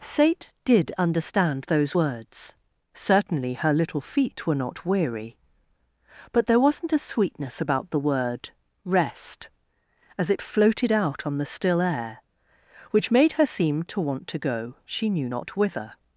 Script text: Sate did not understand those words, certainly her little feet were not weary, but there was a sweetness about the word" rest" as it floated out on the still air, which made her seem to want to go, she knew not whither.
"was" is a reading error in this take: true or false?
true